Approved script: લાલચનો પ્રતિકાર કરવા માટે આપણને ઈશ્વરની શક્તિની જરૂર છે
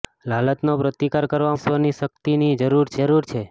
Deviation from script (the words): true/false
true